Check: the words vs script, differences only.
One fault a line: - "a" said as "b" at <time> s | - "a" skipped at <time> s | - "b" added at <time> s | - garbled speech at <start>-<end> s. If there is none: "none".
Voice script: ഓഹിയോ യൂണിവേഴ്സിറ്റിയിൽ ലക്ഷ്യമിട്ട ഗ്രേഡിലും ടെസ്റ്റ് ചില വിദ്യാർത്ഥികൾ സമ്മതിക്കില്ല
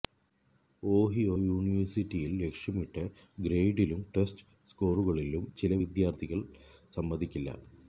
- "സ്കോറുകളിലും" added at 4.7 s